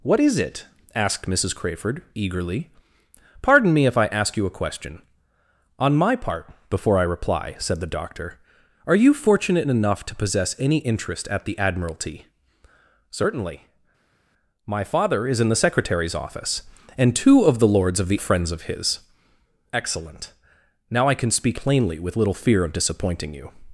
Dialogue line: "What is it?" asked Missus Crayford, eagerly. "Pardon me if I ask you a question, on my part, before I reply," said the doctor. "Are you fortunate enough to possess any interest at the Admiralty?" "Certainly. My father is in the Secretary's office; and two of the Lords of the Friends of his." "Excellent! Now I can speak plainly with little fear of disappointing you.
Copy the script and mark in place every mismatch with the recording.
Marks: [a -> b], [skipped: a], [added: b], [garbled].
"What is it?" asked Missus Crayford, eagerly. "Pardon me if I ask you a question, on my part, before I reply," said the doctor. "Are you fortunate enough to possess any interest at the Admiralty?" "Certainly. My father is in the Secretary's office; and two of the Lords of the Friends of his." "Excellent! Now I can speak plainly with little fear of disappointing you.